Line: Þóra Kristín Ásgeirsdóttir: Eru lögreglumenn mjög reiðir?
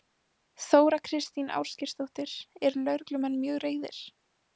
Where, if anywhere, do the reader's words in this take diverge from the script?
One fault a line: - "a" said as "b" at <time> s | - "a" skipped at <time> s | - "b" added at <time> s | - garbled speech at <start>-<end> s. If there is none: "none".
none